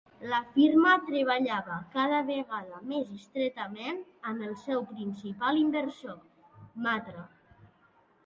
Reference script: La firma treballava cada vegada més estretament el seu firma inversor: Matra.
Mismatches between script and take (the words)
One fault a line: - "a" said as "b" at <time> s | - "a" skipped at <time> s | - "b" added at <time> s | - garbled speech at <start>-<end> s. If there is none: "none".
- "amb" added at 4.3 s
- "firma" said as "principal" at 4.9 s